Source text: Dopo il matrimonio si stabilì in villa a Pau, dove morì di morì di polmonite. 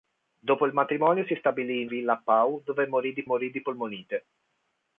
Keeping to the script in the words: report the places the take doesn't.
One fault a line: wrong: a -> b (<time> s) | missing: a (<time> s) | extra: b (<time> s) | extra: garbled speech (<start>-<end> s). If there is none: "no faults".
no faults